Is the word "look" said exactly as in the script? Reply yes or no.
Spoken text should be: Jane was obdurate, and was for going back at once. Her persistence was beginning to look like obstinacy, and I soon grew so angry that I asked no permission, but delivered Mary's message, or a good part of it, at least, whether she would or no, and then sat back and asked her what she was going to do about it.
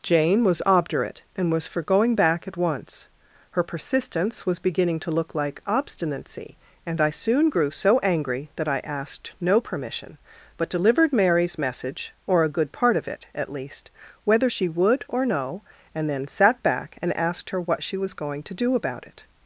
yes